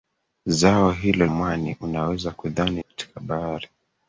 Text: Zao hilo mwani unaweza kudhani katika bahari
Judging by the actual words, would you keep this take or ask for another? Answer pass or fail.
pass